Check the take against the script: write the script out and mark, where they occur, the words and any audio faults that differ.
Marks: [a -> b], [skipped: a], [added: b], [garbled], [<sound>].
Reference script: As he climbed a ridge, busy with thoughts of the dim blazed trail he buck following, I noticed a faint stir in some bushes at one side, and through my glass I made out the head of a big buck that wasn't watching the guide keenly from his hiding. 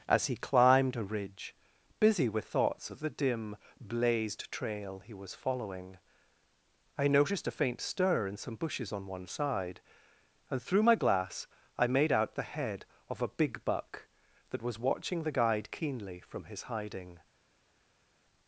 As he climbed a ridge, busy with thoughts of the dim blazed trail he [buck -> was] following, I noticed a faint stir in some bushes [at -> on] one side, and through my glass I made out the head of a big buck that [wasn't -> was] watching the guide keenly from his hiding.